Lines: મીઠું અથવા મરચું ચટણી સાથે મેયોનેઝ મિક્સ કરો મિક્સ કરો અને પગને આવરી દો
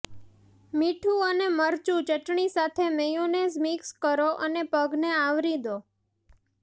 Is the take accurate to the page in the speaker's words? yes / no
no